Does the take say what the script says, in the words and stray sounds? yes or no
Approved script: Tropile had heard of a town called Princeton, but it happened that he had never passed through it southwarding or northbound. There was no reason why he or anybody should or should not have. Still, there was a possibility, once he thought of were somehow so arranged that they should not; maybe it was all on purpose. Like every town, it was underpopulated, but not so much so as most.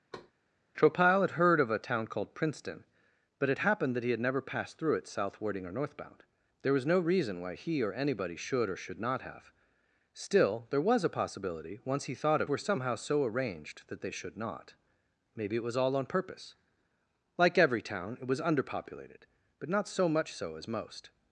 no